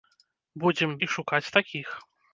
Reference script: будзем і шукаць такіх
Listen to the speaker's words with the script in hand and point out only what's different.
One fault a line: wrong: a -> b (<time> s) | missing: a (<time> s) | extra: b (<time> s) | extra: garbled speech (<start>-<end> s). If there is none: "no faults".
no faults